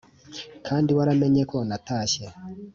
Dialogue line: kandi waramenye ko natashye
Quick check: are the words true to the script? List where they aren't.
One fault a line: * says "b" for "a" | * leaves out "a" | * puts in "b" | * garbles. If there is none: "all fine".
all fine